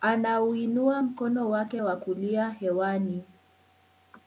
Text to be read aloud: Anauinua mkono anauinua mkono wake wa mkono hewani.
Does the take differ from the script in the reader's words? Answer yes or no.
yes